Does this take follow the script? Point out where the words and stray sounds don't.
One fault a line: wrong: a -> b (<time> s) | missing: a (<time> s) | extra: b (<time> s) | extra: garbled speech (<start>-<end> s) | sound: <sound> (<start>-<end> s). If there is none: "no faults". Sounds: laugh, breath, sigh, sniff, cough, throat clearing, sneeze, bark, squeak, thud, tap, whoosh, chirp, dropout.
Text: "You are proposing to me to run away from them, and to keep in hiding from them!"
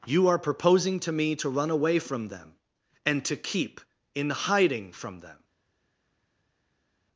no faults